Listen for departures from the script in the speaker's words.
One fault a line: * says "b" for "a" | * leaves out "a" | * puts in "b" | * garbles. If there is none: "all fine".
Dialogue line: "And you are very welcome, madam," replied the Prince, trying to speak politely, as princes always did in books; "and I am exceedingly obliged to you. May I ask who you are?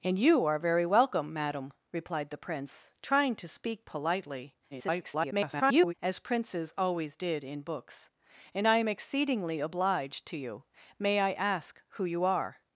* garbles